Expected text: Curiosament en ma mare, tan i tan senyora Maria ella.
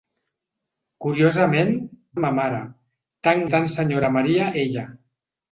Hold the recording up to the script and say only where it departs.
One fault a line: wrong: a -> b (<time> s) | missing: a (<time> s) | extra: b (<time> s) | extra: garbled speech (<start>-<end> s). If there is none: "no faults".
no faults